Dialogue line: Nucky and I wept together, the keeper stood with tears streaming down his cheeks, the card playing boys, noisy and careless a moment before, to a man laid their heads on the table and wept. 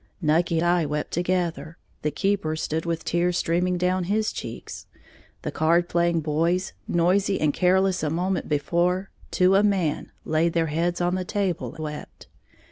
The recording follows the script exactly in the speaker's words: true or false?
false